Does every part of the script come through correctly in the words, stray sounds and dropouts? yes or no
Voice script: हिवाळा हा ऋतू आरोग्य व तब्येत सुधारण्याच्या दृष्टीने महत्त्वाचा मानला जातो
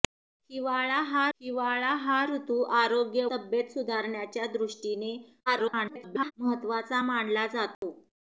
no